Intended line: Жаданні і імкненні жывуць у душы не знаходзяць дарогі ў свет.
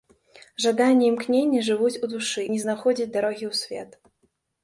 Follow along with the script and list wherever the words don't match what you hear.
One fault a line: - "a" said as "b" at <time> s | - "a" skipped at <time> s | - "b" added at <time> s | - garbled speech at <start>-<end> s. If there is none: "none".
none